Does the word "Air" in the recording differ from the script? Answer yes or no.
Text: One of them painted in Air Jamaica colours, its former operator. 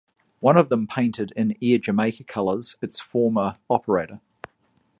no